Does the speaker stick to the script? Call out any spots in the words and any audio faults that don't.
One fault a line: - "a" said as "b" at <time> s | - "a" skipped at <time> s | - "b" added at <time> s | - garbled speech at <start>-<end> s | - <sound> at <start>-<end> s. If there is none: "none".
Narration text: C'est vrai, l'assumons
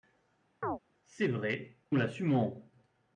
- chirp at 0.6-0.8 s